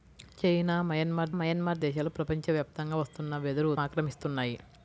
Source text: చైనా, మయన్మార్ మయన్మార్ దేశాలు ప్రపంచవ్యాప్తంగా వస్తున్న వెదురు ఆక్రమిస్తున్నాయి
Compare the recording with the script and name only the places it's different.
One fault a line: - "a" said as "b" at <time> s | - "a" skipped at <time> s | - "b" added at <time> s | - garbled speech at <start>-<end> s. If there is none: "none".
none